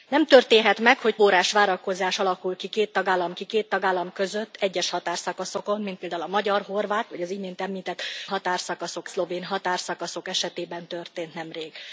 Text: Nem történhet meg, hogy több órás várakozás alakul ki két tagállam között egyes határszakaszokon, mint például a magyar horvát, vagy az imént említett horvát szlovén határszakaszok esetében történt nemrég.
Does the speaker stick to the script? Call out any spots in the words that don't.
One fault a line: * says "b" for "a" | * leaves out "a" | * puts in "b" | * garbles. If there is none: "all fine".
* leaves out "több"
* puts in "ki két tagállam"
* says "határszakaszok" for "horvát"